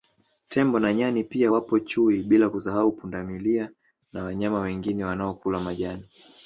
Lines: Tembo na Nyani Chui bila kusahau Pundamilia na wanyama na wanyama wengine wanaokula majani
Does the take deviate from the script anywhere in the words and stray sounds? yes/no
yes